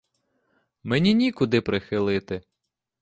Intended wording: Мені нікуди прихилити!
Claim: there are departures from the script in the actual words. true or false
false